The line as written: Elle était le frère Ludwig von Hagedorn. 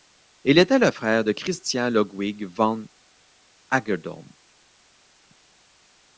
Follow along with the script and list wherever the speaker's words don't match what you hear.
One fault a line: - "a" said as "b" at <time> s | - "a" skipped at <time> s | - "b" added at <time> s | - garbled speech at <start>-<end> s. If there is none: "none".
- "Elle" said as "Il" at 0.4 s
- "de Christian" added at 1.2 s